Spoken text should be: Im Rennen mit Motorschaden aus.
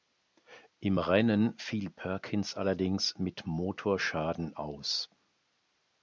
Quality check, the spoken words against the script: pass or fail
fail